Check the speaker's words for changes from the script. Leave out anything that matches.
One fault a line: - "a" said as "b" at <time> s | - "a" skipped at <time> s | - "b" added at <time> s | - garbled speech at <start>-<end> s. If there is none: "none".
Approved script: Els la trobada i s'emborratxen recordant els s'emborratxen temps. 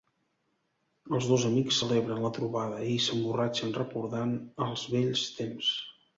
- "dos amics celebren" added at 1.3 s
- "s'emborratxen" said as "vells" at 5.0 s